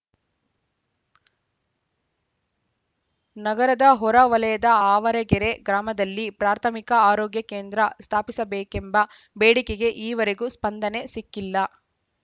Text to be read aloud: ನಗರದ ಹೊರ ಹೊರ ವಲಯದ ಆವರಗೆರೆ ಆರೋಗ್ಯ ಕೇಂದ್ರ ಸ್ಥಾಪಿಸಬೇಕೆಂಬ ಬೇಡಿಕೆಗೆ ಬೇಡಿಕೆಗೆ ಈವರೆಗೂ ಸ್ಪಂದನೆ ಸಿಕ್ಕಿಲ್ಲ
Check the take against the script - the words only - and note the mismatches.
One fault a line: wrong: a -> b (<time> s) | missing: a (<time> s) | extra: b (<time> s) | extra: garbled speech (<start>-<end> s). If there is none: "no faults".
missing: ಹೊರ (4.2 s)
extra: ಗ್ರಾಮದಲ್ಲಿ ಪ್ರಾಥಮಿಕ (5.7 s)
missing: ಬೇಡಿಕೆಗೆ (9.9 s)